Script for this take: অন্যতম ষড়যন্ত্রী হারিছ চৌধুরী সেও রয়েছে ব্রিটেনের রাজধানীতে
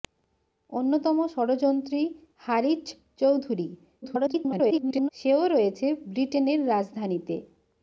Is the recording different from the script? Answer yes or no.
yes